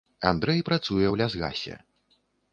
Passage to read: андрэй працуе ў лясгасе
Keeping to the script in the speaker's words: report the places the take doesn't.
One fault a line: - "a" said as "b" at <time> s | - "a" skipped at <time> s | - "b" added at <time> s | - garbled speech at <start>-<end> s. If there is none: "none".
none